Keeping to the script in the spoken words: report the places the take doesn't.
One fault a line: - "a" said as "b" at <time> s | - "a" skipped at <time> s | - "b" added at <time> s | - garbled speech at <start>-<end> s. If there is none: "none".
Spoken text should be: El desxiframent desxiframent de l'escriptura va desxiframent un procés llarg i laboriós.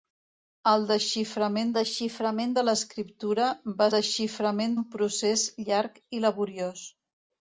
none